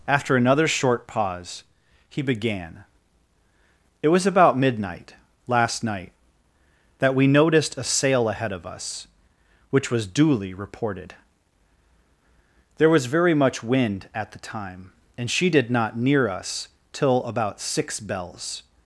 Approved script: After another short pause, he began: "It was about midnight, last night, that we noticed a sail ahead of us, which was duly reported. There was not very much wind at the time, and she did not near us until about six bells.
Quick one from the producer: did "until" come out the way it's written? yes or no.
no